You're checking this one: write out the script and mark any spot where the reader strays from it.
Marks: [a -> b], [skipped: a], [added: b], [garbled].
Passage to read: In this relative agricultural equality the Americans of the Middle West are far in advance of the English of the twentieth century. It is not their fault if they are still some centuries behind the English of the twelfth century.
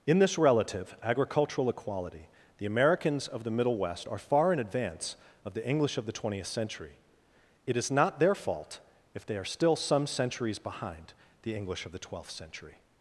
In this relative agricultural equality the Americans of the Middle West are far in advance of the English of the twentieth century. It is not their fault if they are still some centuries behind the English of the twelfth century.